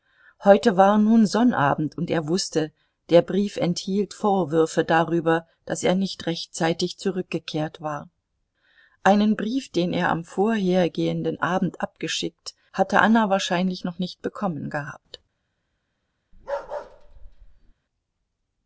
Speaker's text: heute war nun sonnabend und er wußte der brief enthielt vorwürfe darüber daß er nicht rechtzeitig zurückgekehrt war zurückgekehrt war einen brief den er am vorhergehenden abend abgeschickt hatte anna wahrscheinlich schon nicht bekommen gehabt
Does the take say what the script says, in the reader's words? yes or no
no